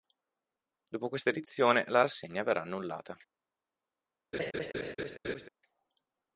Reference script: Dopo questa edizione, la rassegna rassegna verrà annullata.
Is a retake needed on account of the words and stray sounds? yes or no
yes